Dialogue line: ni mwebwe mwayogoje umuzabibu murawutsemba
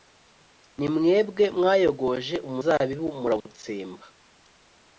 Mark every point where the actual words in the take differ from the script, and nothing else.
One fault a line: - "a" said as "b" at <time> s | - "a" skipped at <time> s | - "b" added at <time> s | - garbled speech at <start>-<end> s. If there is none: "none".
none